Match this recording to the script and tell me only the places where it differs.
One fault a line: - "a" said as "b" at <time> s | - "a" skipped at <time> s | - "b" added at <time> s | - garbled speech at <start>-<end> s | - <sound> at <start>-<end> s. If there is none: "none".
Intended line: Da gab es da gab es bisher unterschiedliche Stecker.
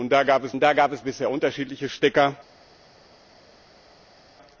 none